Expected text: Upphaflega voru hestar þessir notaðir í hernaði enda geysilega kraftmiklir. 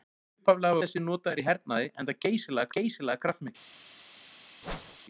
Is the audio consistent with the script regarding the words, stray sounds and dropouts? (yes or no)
no